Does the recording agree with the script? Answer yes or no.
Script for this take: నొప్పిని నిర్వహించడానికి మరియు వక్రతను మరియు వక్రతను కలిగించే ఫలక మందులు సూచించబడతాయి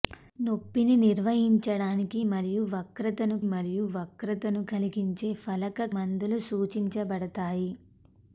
yes